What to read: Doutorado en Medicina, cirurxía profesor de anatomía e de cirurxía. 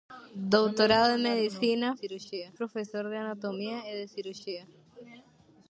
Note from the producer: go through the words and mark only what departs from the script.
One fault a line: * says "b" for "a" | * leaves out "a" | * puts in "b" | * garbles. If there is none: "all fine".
all fine